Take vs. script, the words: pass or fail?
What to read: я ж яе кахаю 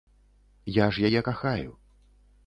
pass